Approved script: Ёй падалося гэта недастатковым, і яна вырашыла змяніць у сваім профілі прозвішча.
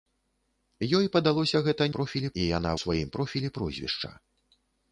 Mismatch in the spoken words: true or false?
true